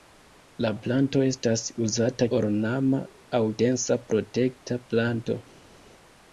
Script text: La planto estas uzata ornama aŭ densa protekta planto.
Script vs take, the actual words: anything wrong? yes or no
no